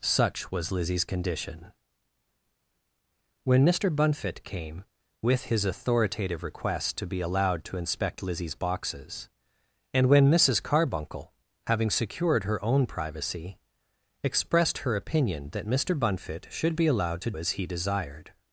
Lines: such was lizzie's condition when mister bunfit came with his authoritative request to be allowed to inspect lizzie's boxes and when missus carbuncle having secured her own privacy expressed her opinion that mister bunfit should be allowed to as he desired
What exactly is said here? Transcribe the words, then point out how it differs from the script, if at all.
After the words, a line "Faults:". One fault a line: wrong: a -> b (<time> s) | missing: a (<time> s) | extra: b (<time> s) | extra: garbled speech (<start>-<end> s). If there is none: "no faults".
such was lizzie's condition when mister bunfit came with his authoritative request to be allowed to inspect lizzie's boxes and when missus carbuncle having secured her own privacy expressed her opinion that mister bunfit should be allowed to as he desired
Faults:
no faults